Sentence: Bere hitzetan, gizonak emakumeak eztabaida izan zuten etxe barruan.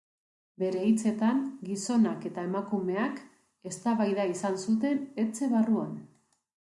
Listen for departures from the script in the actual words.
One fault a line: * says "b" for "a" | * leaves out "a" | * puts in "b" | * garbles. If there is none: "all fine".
* puts in "eta"